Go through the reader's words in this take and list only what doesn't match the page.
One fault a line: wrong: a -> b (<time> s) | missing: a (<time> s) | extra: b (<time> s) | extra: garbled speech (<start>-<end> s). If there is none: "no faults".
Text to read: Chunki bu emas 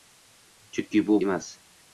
no faults